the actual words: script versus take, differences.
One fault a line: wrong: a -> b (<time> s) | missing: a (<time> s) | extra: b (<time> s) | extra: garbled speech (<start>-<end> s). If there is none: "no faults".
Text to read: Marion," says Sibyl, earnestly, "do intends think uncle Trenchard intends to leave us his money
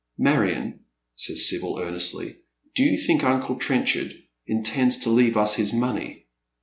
wrong: intends -> you (2.8 s)